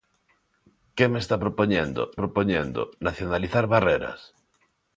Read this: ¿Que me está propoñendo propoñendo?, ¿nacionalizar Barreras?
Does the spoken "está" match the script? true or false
true